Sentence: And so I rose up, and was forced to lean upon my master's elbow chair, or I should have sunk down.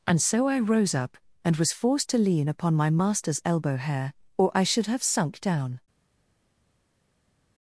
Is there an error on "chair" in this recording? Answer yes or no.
yes